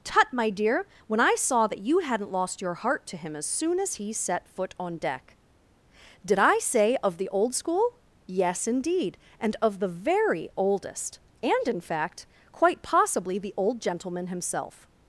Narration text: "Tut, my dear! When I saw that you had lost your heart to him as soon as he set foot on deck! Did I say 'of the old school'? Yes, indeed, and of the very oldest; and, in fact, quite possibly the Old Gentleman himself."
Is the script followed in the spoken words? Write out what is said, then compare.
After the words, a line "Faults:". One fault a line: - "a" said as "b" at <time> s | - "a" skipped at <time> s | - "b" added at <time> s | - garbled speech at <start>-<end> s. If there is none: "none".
"Tut, my dear! When I saw that you hadn't lost your heart to him as soon as he set foot on deck! Did I say 'of the old school'? Yes, indeed, and of the very oldest; and, in fact, quite possibly the Old Gentleman himself."
Faults:
- "had" said as "hadn't" at 2.0 s